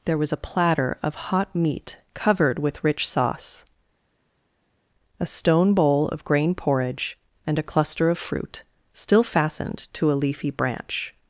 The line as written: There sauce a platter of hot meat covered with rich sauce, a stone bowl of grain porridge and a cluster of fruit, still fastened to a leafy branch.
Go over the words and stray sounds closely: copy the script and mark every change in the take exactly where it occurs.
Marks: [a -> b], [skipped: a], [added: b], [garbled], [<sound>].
There [sauce -> was] a platter of hot meat covered with rich sauce, a stone bowl of grain porridge and a cluster of fruit, still fastened to a leafy branch.